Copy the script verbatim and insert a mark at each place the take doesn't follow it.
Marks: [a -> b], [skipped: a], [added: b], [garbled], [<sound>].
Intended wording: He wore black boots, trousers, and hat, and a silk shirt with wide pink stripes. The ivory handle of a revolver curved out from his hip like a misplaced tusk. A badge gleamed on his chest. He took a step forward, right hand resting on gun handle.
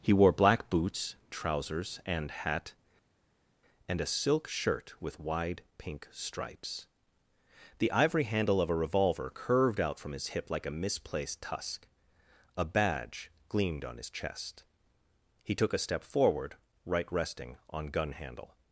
He wore black boots, trousers, and hat, and a silk shirt with wide pink stripes. The ivory handle of a revolver curved out from his hip like a misplaced tusk. A badge gleamed on his chest. He took a step forward, right [skipped: hand] resting on gun handle.